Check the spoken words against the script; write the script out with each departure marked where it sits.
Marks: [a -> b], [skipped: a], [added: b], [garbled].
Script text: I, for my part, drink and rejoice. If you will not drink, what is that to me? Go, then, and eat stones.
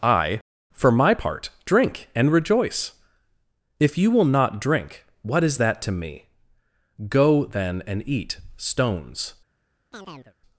I, for my part, drink and rejoice. If you will not drink, what is that to me? Go, then, and eat stones.